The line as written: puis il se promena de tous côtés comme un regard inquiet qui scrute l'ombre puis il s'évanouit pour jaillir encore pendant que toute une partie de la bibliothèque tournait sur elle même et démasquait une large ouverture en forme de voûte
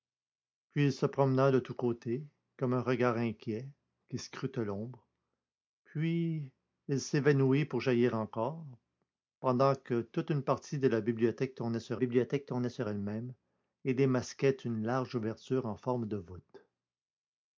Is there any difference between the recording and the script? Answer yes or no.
yes